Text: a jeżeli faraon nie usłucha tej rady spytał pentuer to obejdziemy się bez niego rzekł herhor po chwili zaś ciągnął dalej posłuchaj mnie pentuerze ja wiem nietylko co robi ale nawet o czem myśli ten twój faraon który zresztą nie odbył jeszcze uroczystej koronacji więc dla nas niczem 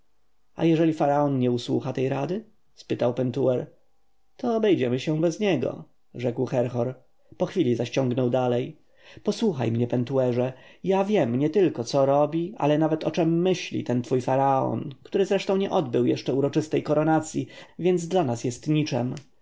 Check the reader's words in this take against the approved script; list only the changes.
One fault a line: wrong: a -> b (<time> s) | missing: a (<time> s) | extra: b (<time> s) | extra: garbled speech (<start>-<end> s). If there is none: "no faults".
extra: jest (18.4 s)